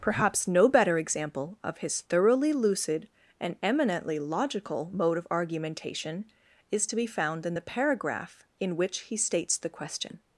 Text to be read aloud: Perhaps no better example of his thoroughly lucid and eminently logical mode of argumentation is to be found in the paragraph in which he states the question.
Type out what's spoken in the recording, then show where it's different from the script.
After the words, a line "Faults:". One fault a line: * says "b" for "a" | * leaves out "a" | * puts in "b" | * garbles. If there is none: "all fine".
Perhaps no better example of his thoroughly lucid and eminently logical mode of argumentation is to be found in the paragraph in which he states the question.
Faults:
all fine